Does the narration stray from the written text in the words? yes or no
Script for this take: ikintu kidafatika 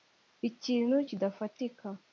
no